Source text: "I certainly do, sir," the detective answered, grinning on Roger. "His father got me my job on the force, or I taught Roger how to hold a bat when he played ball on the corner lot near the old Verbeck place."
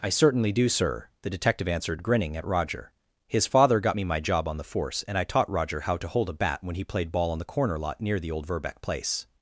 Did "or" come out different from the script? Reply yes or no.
yes